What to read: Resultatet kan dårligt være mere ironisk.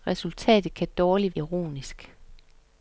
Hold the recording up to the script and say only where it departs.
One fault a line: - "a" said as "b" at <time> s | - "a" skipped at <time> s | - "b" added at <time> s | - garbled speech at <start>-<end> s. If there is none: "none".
- "være mere" skipped at 1.4 s